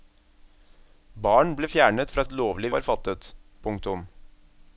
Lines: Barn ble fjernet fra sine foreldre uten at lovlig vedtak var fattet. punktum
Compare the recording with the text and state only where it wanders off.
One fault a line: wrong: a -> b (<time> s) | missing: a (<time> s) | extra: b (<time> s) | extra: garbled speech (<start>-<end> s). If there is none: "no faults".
missing: sine foreldre uten (2.2 s)
missing: vedtak (2.7 s)